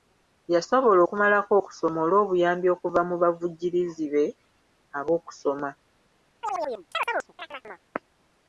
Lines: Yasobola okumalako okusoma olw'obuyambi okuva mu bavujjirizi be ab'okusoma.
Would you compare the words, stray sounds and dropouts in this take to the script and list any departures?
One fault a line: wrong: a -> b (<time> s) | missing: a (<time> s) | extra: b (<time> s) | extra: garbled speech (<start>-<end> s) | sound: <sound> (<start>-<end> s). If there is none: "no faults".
sound: chirp (6.4-7.9 s)